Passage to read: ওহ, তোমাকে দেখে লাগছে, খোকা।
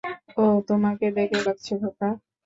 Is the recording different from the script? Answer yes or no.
no